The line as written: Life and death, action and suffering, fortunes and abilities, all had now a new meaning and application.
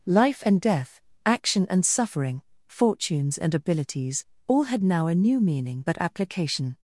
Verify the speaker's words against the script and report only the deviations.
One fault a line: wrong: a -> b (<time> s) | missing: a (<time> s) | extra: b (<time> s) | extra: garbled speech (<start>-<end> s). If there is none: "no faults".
wrong: and -> but (5.9 s)